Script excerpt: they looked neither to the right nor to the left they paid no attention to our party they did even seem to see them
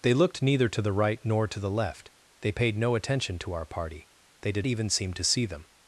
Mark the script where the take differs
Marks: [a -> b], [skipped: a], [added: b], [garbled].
they looked neither to the right nor to the left they paid no attention to our party they did even seem to see them